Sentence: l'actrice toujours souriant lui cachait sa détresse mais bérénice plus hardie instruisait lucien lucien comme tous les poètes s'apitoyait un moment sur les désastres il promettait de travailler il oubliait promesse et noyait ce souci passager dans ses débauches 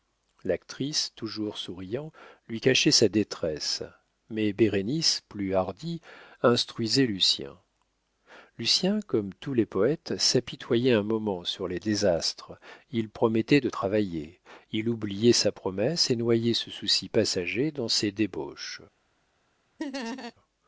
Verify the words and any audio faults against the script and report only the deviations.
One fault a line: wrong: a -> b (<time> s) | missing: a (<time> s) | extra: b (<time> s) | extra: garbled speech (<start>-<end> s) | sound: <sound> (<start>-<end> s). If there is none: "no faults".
extra: sa (15.3 s)
sound: laugh (19.8-20.3 s)